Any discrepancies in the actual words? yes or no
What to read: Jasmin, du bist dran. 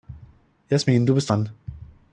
no